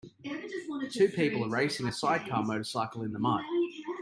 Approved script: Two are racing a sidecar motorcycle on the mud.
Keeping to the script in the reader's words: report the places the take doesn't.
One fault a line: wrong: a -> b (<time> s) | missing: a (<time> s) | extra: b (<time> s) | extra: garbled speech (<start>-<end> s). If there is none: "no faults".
extra: people (1.1 s)
wrong: on -> in (3.0 s)